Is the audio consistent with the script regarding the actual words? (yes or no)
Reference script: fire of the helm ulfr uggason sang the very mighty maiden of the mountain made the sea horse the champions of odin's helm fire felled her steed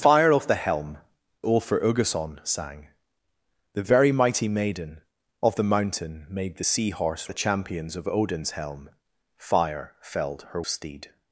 yes